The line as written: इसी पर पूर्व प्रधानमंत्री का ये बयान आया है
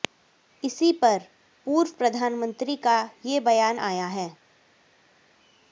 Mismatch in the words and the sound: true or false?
false